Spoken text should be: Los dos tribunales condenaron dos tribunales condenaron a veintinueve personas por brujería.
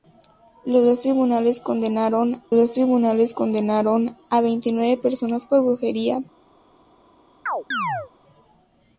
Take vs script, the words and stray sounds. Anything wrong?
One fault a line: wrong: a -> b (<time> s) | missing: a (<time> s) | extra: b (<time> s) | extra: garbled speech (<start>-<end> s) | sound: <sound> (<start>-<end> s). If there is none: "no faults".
sound: chirp (7.5-8.1 s)